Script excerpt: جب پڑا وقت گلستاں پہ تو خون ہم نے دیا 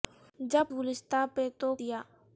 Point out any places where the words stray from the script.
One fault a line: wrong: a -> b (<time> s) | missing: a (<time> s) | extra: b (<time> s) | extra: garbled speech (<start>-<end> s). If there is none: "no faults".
missing: پڑا وقت (0.7 s)
missing: خون ہم نے (1.8 s)